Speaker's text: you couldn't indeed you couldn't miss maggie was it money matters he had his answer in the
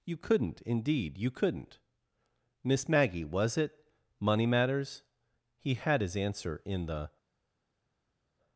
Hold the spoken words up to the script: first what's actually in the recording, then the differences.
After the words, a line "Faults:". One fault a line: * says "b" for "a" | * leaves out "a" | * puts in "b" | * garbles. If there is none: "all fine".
you couldn't indeed you couldn't miss maggie was it money matters he had his answer in the
Faults:
all fine